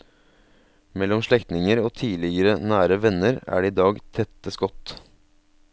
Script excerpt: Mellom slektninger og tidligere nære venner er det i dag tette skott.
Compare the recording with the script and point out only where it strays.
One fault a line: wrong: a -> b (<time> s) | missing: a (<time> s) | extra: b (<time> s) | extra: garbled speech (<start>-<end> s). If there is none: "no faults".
no faults